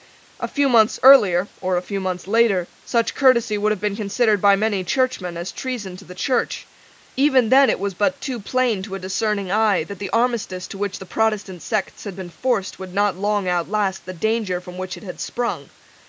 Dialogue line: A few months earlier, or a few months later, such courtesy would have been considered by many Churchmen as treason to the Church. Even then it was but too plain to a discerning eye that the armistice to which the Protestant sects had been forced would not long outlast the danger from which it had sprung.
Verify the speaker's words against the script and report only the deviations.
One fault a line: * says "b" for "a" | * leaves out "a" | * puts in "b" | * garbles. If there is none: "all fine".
all fine